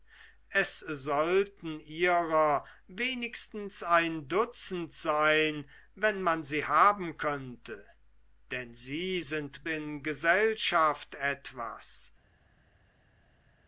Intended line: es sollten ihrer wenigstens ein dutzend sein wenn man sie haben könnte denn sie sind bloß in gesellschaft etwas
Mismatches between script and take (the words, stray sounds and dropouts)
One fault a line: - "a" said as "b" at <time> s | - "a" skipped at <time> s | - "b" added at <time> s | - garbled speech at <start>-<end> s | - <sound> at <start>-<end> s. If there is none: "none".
- "bloß" skipped at 9.7 s